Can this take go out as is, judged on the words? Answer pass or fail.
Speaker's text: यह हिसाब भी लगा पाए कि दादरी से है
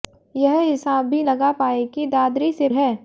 pass